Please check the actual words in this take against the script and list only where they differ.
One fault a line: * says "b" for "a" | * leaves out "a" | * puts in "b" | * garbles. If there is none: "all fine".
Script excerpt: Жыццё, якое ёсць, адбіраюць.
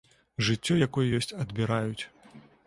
all fine